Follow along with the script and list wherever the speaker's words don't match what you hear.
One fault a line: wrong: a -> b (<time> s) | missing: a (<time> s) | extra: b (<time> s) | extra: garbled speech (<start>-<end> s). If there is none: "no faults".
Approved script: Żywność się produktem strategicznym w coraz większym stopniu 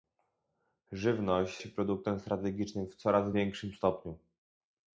no faults